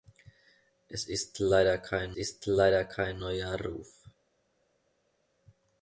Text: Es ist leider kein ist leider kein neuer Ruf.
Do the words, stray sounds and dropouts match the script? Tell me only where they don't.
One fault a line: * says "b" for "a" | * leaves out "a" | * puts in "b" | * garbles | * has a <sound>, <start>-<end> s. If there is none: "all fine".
all fine